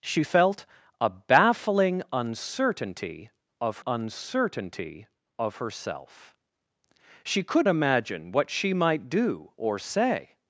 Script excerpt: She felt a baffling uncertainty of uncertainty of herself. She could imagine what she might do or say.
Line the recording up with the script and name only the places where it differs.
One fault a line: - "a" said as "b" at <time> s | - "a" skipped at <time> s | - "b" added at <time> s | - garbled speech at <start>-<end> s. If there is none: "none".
none